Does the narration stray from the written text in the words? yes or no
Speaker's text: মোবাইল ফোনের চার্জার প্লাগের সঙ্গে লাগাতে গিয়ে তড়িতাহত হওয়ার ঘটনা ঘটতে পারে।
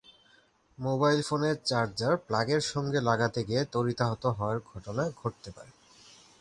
no